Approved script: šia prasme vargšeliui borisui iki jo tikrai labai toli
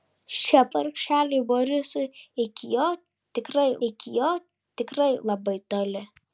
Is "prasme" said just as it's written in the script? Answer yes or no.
no